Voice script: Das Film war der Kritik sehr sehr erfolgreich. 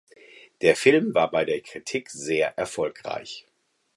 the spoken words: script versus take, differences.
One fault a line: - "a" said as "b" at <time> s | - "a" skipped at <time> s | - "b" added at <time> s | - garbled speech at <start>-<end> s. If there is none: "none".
- "Das" said as "Der" at 0.6 s
- "bei" added at 1.3 s
- "sehr" skipped at 2.6 s